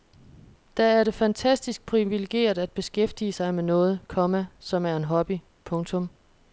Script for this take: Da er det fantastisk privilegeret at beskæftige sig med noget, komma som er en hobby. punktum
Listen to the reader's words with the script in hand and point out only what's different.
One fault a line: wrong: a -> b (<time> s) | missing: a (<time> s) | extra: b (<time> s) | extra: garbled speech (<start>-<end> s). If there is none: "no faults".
no faults